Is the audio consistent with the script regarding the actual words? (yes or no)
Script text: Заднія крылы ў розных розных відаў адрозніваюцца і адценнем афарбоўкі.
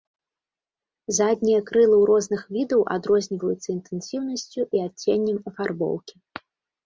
no